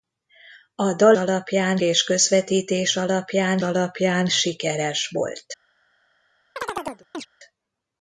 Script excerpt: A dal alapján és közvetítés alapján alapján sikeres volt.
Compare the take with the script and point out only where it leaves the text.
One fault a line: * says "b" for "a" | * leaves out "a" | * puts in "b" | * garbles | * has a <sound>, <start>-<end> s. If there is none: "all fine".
* has a chirp, 6.6-7.3 s